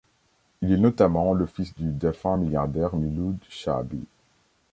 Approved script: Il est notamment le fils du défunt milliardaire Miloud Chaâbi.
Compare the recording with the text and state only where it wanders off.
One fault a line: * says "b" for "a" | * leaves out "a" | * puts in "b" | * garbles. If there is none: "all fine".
all fine